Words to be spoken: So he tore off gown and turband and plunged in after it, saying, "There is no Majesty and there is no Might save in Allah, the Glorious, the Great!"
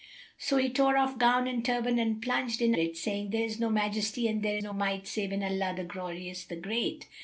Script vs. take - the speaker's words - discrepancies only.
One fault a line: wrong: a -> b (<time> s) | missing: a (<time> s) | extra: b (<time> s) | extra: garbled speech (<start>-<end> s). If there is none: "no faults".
missing: after (2.7 s)
missing: is (4.6 s)